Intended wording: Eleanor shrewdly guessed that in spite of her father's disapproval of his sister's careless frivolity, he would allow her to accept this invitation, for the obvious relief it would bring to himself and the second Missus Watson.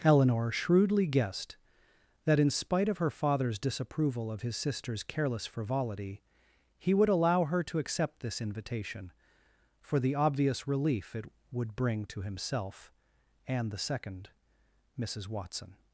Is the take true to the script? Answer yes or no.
yes